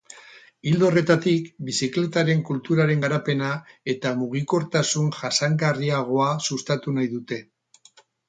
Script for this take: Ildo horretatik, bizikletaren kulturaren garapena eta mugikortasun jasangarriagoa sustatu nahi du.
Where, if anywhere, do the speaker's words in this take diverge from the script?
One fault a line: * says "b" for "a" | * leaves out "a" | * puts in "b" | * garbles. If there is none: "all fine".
* says "dute" for "du"